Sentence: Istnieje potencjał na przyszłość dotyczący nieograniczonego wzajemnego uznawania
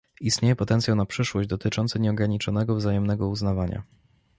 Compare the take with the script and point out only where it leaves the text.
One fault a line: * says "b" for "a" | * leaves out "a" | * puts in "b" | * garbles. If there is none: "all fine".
all fine